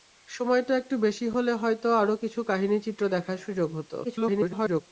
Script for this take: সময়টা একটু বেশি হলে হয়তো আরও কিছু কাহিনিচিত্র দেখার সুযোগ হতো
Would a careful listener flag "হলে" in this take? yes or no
no